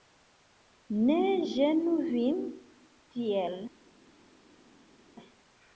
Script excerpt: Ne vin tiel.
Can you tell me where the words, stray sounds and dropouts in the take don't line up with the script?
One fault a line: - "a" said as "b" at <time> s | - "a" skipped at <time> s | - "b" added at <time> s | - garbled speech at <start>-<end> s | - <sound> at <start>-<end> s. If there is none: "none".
- "ĝenu" added at 1.5 s